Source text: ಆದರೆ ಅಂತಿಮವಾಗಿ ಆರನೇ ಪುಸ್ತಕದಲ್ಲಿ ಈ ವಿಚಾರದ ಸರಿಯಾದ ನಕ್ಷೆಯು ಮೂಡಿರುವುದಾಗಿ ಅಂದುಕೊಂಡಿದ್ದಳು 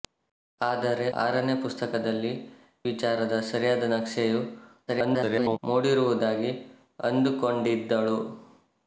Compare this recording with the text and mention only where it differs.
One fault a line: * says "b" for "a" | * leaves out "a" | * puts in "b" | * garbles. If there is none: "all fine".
* leaves out "ಅಂತಿಮವಾಗಿ"
* leaves out "ಈ"
* garbles